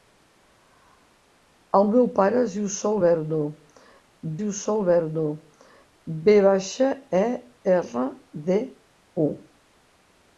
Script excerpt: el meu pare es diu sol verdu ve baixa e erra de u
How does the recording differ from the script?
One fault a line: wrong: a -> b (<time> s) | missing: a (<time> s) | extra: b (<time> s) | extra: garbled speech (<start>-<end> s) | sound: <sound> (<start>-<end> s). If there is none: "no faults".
extra: diu sol verdu (4.4 s)